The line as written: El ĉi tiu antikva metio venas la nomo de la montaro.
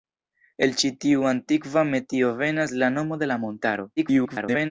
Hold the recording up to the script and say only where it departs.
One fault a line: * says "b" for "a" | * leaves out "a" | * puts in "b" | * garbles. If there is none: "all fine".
* garbles